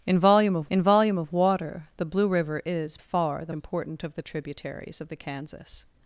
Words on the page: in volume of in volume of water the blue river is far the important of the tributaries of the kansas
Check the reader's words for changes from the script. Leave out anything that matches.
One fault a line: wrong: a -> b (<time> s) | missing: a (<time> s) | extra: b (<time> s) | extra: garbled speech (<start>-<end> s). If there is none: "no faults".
no faults